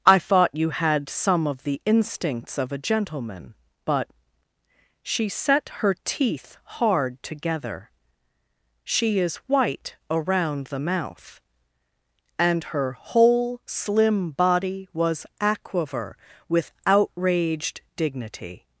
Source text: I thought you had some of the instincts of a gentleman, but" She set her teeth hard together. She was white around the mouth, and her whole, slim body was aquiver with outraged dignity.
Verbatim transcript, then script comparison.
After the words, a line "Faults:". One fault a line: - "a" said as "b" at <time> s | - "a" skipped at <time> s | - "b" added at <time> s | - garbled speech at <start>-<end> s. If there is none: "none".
I thought you had some of the instincts of a gentleman, but" She set her teeth hard together. She is white around the mouth, and her whole, slim body was aquiver with outraged dignity.
Faults:
- "was" said as "is" at 9.2 s